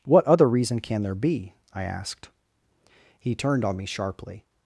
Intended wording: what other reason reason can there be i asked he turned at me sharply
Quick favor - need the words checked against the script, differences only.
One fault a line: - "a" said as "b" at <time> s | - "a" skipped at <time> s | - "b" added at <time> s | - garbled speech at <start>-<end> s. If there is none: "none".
- "reason" skipped at 0.8 s
- "at" said as "on" at 3.6 s